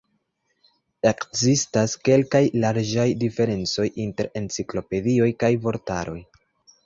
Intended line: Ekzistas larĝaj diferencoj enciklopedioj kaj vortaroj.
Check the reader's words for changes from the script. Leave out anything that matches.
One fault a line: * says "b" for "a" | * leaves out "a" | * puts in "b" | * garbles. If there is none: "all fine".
* puts in "kelkaj"
* puts in "inter"